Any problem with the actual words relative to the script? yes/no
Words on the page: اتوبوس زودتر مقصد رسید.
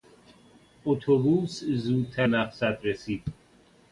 no